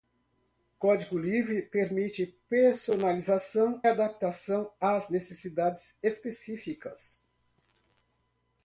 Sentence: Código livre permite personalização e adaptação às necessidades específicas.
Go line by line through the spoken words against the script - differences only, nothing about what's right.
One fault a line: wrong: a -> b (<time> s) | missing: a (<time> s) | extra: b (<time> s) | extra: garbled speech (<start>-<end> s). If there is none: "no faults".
missing: e (3.8 s)